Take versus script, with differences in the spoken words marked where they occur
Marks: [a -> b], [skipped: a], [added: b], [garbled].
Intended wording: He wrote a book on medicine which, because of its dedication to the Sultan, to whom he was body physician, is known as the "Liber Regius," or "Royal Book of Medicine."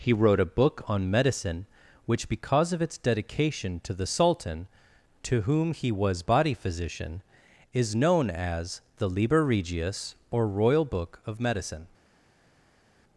He wrote a book on medicine which, because of its dedication to the Sultan, to whom he was body physician, is known as the "Liber Regius," or "Royal Book of Medicine."